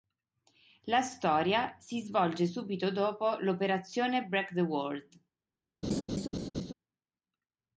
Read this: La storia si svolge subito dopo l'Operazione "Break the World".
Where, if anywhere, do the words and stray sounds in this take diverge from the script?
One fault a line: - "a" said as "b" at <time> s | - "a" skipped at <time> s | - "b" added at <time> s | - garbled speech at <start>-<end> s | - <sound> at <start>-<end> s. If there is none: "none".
- laugh at 5.8-6.7 s